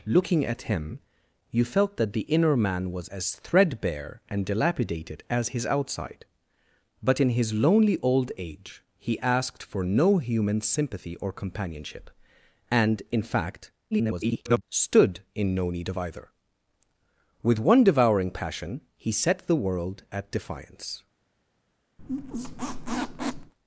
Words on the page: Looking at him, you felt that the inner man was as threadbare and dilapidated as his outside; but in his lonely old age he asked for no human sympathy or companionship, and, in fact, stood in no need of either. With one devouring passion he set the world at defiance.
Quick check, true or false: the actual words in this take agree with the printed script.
false